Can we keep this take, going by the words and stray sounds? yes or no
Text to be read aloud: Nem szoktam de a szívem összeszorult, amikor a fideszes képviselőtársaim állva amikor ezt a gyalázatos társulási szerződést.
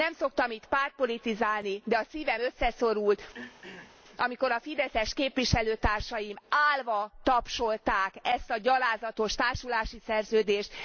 no